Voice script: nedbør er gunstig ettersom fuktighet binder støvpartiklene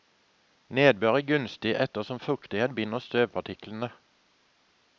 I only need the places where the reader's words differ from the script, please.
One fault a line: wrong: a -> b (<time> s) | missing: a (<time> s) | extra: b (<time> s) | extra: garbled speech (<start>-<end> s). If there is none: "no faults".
no faults